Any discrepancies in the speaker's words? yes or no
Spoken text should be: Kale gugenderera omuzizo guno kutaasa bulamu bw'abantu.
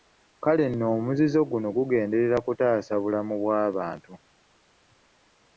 yes